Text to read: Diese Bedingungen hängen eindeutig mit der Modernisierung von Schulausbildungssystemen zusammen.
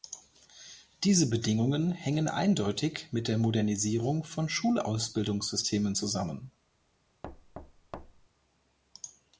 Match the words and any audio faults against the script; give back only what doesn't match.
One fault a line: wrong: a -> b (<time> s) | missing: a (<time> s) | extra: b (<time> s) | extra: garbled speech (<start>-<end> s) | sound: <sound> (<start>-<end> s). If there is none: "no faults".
sound: thud (7.2-8.3 s)